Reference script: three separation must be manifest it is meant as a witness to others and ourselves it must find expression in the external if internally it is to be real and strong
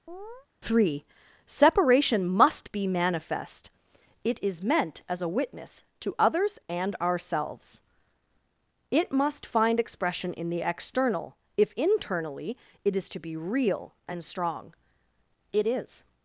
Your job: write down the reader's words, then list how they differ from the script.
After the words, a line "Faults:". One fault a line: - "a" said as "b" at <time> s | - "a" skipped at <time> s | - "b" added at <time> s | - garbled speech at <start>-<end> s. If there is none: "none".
three separation must be manifest it is meant as a witness to others and ourselves it must find expression in the external if internally it is to be real and strong it is
Faults:
- "it is" added at 15.5 s